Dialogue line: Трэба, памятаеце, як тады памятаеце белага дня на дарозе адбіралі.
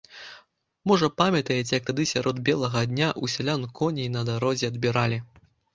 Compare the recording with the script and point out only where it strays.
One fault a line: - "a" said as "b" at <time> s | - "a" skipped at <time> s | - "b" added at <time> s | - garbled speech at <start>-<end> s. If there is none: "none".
- "Трэба" said as "Можа" at 0.9 s
- "памятаеце" said as "сярод" at 2.1 s
- "ў сялян коней" added at 3.2 s